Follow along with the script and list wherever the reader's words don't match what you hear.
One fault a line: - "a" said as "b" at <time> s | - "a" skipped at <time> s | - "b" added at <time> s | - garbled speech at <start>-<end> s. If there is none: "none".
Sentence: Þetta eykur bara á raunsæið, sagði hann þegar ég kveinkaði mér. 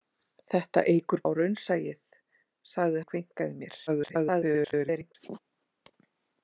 - "bara" skipped at 1.2 s
- "hann þegar" skipped at 3.0 s
- garbled speech at 3.9-5.2 s